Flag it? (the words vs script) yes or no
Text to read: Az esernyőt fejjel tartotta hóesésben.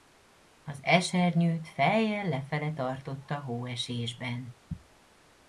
yes